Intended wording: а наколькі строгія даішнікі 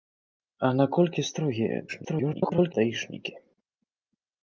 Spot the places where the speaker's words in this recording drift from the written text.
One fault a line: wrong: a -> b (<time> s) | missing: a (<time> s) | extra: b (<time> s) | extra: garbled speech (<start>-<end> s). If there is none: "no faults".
extra: garbled speech (1.9-2.7 s)